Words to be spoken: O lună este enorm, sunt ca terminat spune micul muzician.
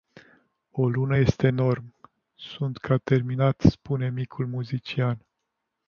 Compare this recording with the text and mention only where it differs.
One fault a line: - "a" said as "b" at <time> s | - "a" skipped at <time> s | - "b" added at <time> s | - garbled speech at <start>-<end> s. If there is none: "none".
none